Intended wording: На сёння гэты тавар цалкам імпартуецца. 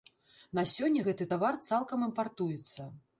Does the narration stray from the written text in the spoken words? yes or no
no